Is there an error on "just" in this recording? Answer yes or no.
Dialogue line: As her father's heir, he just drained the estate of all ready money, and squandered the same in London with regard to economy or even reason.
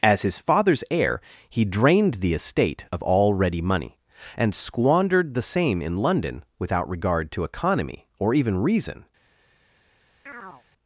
yes